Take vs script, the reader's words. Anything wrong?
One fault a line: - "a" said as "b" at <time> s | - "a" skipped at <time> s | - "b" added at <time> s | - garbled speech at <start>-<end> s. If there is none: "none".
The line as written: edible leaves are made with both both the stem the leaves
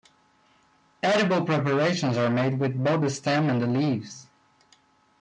- "leaves" said as "preparations" at 1.4 s
- "both" skipped at 3.0 s
- "and" added at 3.5 s